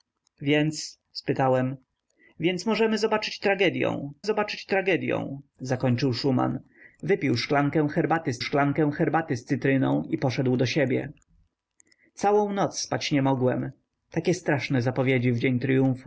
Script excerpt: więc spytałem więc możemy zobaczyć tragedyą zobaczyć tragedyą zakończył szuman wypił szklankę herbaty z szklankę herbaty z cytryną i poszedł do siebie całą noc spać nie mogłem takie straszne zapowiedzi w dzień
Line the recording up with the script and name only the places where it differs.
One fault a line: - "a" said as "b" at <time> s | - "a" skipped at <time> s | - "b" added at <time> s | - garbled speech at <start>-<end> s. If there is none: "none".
none